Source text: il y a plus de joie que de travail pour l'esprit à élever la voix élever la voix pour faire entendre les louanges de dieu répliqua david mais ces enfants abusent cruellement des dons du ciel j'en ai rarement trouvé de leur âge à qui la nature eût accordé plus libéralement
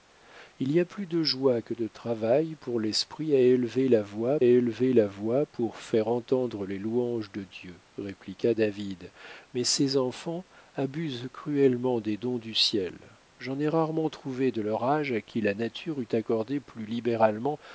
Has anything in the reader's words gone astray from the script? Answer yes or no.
no